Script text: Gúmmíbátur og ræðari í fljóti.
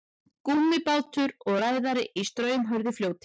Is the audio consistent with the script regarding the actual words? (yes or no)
no